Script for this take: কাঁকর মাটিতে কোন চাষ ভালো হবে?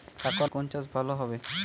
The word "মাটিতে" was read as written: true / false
false